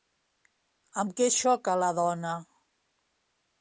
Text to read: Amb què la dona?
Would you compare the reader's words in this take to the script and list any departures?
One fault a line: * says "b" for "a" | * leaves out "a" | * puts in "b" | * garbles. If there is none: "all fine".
* puts in "xoca"